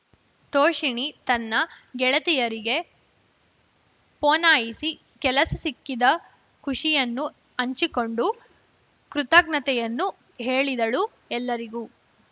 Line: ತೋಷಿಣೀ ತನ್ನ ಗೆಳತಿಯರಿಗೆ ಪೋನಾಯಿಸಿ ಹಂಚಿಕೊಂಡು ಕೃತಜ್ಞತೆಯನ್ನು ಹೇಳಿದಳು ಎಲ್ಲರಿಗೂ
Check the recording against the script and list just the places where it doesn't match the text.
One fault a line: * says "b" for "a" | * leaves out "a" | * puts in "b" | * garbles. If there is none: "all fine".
* puts in "ಕೆಲಸ ಸಿಕ್ಕಿದ ಖುಷಿಯನ್ನು"